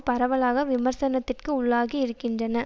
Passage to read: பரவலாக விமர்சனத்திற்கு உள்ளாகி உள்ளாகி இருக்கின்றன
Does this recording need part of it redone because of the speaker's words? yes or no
yes